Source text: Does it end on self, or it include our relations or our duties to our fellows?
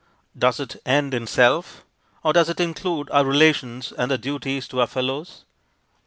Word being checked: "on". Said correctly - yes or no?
no